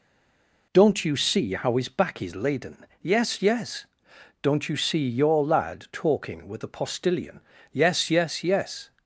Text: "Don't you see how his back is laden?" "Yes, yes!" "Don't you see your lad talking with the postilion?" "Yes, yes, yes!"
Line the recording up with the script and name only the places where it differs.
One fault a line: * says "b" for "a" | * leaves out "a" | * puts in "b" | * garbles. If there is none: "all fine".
all fine